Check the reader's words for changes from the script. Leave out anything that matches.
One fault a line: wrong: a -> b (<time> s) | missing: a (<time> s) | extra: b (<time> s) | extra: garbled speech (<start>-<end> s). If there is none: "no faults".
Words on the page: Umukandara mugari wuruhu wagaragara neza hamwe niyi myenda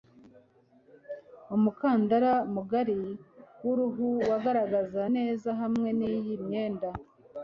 no faults